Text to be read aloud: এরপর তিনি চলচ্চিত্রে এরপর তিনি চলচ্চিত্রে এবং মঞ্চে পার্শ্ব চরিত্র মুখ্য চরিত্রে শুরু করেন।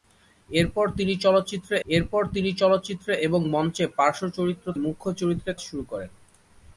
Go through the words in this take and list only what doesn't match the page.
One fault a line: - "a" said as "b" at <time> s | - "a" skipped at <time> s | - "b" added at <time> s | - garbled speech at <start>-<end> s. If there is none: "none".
none